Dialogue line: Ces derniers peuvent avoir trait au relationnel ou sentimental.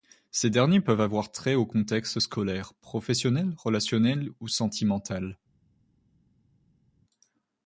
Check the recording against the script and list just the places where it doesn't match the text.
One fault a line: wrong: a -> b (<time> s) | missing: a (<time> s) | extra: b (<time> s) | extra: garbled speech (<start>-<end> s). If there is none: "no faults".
extra: contexte scolaire professionnel (1.6 s)